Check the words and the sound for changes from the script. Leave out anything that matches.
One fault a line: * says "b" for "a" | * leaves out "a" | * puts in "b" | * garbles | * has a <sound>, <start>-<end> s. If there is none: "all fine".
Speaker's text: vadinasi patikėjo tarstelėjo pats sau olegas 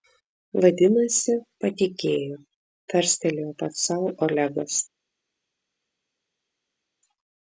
all fine